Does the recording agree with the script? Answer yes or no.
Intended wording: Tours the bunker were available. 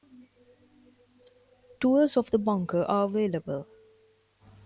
no